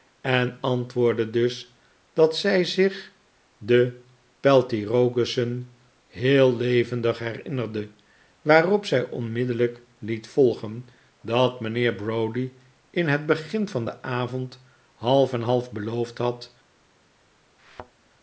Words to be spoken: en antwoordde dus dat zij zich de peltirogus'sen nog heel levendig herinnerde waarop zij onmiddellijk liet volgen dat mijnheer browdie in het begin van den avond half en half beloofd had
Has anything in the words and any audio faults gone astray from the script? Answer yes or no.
yes